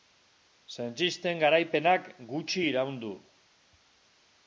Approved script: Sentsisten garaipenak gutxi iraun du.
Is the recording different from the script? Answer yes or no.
no